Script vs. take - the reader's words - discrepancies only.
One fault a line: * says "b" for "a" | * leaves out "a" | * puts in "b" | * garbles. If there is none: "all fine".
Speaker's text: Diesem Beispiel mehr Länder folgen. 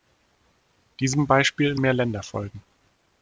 all fine